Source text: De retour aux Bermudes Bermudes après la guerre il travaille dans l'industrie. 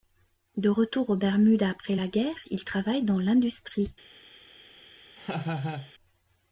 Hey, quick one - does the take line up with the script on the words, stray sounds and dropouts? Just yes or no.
no